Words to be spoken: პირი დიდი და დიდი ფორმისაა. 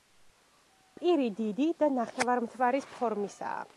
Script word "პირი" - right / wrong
right